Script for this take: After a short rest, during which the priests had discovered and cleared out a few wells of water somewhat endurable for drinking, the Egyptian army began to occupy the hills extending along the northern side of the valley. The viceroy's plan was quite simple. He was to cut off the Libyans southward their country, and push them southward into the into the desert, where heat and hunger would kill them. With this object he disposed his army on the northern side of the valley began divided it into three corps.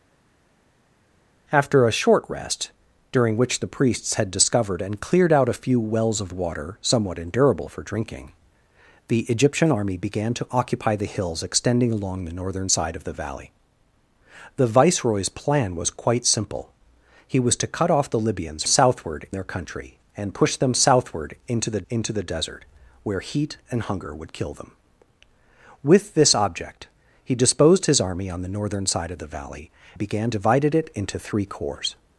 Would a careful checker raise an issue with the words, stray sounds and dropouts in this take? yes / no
no